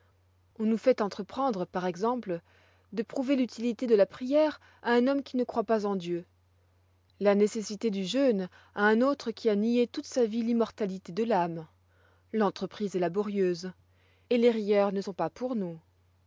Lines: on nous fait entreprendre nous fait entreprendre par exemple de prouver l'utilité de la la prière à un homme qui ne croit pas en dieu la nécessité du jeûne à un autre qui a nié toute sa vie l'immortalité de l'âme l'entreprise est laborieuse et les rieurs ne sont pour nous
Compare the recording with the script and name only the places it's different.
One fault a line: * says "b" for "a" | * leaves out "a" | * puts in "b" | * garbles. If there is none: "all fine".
* leaves out "nous fait entreprendre"
* leaves out "la"
* puts in "pas"